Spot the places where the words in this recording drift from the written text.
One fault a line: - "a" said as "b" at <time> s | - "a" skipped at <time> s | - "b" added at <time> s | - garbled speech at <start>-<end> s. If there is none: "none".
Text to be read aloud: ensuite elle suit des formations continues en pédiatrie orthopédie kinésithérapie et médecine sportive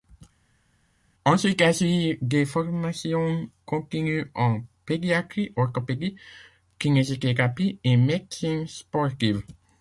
none